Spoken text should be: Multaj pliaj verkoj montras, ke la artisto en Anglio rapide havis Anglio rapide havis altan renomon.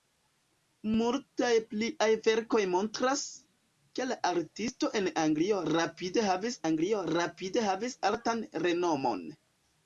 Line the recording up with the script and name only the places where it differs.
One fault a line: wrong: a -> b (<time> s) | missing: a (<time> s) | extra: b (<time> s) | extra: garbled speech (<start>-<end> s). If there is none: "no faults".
no faults